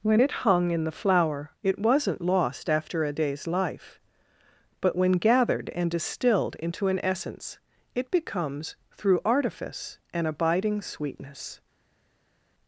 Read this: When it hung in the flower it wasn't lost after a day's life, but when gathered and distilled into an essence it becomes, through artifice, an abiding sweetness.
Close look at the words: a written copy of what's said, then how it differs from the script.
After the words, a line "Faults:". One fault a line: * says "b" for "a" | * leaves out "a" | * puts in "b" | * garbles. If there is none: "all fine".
When it hung in the flower it wasn't lost after a day's life, but when gathered and distilled into an essence it becomes, through artifice, an abiding sweetness.
Faults:
all fine